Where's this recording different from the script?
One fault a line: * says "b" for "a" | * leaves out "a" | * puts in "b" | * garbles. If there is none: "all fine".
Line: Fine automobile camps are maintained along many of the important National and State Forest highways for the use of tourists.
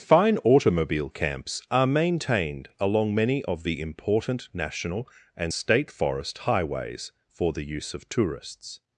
all fine